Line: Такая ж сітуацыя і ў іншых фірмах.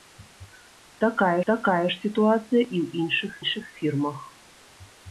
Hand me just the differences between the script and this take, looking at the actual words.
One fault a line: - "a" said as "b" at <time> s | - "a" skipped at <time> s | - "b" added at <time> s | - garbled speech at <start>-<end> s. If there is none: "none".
- "такая" added at 1.5 s
- "іншых" added at 3.4 s